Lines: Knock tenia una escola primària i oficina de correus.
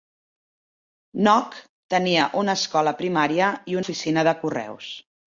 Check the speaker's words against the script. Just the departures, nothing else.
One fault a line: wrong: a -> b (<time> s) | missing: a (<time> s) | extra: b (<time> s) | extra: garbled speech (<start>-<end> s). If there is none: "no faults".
no faults